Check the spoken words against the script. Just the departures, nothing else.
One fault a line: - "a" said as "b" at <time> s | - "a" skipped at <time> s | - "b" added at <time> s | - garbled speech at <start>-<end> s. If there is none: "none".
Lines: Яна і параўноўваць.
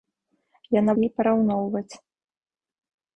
none